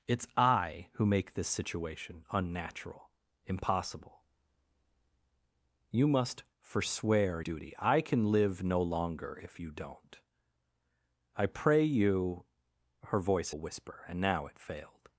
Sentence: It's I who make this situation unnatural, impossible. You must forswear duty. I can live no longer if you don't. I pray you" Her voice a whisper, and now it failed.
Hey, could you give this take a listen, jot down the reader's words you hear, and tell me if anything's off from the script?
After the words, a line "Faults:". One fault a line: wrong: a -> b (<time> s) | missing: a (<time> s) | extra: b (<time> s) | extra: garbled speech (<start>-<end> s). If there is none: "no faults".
It's I who make this situation unnatural, impossible. You must forswear duty. I can live no longer if you don't. I pray you" Her voice a whisper, and now it failed.
Faults:
no faults